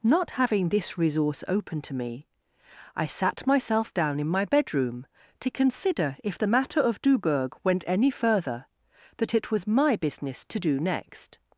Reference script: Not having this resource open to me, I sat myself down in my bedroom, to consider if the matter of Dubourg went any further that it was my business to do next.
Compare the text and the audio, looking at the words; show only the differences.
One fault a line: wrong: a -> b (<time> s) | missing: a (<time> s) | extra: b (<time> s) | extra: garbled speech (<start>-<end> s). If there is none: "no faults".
no faults